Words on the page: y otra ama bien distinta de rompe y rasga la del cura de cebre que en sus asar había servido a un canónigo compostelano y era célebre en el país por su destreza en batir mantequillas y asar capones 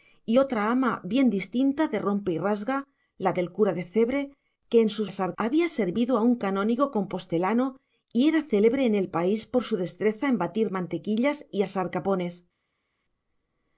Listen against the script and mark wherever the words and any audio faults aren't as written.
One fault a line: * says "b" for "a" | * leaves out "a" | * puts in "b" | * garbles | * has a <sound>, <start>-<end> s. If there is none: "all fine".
all fine